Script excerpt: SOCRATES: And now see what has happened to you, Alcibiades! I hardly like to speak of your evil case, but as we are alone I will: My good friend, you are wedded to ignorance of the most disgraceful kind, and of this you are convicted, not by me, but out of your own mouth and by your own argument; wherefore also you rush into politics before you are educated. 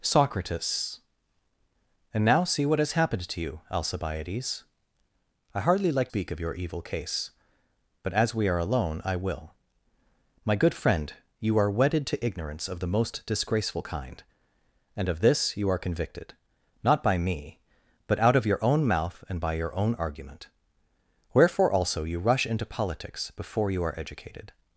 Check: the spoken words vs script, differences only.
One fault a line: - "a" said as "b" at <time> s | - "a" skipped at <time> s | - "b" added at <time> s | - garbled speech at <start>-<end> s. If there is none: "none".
- "to" skipped at 6.1 s